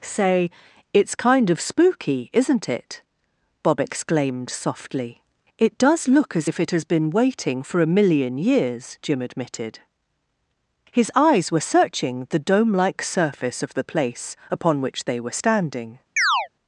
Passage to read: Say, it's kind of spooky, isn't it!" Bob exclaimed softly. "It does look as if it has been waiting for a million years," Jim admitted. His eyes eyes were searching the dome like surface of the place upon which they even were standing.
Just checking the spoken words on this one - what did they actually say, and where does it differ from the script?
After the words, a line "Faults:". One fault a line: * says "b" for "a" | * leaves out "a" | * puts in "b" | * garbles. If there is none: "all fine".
Say, it's kind of spooky, isn't it!" Bob exclaimed softly. "It does look as if it has been waiting for a million years," Jim admitted. His eyes were searching the dome like surface of the place upon which they were standing.
Faults:
* leaves out "eyes"
* leaves out "even"